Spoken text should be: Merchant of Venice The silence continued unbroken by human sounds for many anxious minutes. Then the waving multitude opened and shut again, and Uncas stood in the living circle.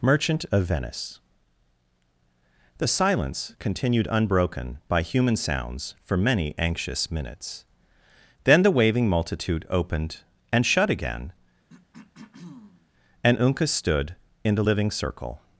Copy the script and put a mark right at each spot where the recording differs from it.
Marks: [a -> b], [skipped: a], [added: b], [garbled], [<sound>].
Merchant of Venice The silence continued unbroken by human sounds for many anxious minutes. Then the waving multitude opened and shut again, [throat clearing] and Uncas stood in the living circle.